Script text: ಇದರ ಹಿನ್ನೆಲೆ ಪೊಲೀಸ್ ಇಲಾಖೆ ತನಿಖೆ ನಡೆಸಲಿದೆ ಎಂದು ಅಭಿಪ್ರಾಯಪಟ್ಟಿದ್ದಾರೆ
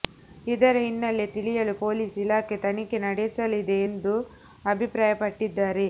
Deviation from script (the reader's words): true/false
true